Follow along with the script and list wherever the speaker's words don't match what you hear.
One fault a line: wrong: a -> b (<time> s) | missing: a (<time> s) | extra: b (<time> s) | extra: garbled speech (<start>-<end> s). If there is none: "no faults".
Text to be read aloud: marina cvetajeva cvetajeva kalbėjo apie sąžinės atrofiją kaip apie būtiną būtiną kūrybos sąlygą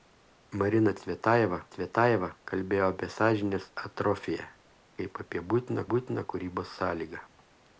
no faults